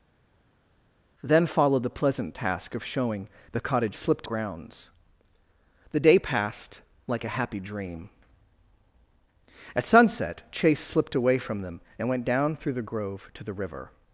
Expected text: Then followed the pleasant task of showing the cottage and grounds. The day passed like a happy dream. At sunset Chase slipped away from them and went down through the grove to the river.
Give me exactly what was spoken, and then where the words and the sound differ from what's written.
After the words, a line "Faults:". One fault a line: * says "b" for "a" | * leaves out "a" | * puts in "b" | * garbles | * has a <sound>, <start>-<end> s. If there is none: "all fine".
Then followed the pleasant task of showing the cottage slipped grounds. The day passed like a happy dream. At sunset Chase slipped away from them and went down through the grove to the river.
Faults:
* says "slipped" for "and"